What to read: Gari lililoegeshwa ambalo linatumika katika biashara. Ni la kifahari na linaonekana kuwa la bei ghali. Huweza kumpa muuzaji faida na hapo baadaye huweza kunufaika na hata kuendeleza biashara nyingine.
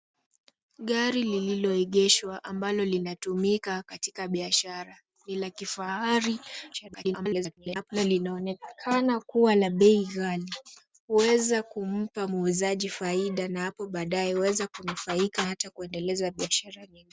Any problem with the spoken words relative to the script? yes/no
yes